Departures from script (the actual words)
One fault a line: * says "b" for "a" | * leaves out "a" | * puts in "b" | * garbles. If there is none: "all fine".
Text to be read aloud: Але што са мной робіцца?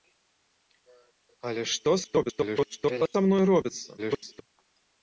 * garbles
* garbles